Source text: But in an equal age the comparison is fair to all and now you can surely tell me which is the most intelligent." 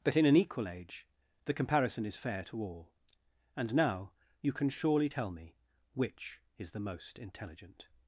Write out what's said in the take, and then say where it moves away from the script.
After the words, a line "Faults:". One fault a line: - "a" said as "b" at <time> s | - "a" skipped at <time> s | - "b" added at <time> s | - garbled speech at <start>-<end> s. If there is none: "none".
But in an equal age the comparison is fair to all and now you can surely tell me which is the most intelligent."
Faults:
none